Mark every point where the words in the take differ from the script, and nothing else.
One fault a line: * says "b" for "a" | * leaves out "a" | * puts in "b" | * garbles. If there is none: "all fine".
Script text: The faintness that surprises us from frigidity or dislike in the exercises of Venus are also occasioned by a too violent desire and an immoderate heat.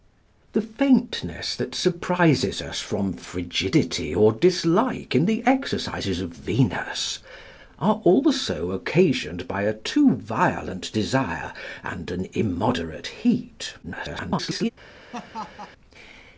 * garbles